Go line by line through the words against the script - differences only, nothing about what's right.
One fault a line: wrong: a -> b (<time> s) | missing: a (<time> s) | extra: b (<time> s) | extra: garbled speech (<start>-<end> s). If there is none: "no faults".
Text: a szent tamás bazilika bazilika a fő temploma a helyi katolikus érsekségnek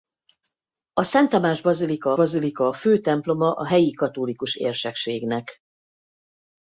no faults